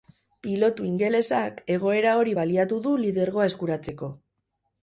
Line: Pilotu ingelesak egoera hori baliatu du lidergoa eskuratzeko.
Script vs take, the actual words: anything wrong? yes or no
no